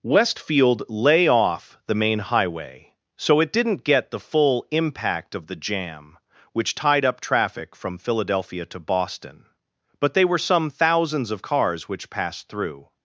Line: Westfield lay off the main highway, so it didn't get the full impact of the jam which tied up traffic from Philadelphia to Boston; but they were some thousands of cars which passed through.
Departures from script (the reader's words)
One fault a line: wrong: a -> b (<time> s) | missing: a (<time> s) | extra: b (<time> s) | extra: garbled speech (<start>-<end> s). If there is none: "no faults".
no faults